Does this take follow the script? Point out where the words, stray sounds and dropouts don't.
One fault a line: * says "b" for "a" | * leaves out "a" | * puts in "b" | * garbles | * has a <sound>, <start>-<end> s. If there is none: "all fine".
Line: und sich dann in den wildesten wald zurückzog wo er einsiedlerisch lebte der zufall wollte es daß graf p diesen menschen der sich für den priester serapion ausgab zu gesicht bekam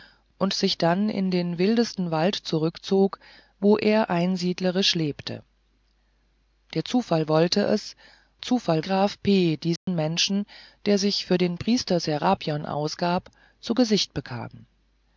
* says "zufall" for "daß"
* has a dropout, 9.8-9.9 s